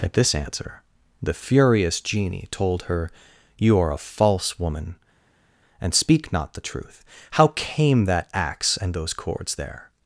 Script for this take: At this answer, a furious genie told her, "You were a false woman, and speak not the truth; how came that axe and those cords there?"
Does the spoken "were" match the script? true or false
false